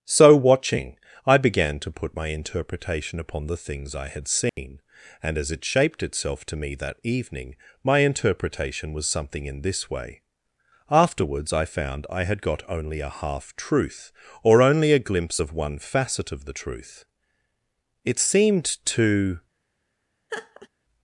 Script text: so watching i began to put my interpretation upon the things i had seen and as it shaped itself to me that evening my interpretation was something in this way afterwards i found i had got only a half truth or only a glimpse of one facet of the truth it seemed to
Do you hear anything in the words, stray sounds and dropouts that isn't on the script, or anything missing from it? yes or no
yes